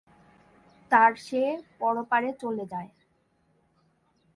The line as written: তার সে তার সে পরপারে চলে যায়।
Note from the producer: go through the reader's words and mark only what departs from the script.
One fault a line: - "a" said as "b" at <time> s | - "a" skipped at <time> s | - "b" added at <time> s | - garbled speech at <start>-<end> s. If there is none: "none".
- "তার সে" skipped at 1.4 s